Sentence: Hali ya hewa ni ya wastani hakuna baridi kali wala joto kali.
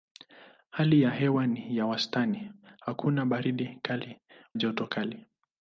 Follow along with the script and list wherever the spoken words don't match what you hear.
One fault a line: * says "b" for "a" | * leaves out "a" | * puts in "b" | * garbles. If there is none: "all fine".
* leaves out "wala"